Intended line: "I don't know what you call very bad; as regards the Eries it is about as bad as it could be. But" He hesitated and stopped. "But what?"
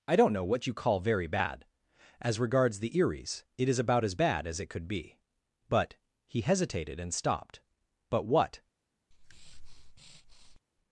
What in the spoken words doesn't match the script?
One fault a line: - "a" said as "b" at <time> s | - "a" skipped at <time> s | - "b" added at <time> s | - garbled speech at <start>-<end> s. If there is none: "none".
none